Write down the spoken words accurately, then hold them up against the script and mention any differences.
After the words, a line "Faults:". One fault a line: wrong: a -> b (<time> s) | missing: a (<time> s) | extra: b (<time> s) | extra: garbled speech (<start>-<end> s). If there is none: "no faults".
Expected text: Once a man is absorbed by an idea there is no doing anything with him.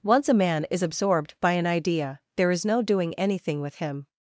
Once a man is absorbed by an idea there is no doing anything with him.
Faults:
no faults